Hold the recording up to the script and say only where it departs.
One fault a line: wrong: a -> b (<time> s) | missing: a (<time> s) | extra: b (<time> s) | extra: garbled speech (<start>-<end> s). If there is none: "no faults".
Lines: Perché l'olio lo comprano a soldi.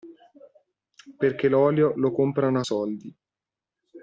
no faults